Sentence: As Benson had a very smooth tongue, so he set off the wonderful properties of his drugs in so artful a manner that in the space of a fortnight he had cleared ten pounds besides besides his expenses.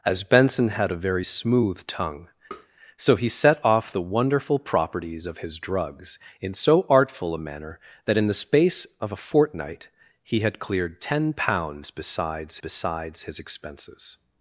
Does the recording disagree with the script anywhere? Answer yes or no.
no